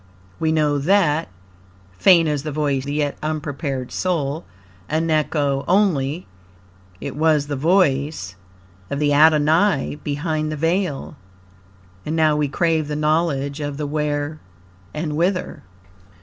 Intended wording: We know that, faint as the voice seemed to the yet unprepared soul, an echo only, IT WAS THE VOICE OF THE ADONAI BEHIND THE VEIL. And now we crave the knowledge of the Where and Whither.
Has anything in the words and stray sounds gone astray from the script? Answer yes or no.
yes